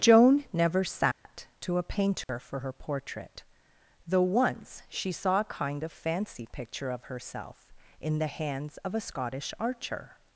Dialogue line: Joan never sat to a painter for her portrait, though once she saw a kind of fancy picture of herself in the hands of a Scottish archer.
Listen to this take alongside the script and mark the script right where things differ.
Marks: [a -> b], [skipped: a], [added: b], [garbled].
Joan never sat to a painter for her portrait, though once she saw a kind of fancy picture of herself in the hands of a Scottish archer.